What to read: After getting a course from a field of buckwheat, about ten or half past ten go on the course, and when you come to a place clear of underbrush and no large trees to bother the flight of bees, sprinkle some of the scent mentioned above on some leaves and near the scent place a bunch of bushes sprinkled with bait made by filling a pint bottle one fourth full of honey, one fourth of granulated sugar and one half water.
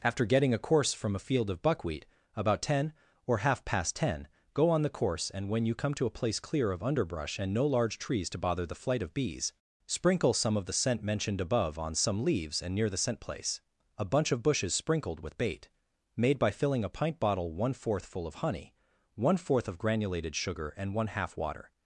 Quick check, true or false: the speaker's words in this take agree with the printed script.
true